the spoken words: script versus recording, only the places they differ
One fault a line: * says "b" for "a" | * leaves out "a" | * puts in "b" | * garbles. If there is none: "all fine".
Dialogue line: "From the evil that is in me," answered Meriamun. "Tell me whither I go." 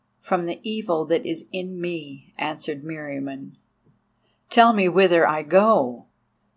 all fine